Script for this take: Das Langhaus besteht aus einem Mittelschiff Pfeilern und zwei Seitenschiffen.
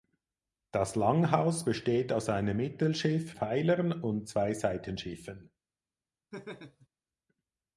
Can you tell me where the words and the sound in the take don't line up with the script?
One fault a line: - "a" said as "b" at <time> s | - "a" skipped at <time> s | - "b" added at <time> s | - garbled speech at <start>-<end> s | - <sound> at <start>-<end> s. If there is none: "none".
- laugh at 6.3-6.9 s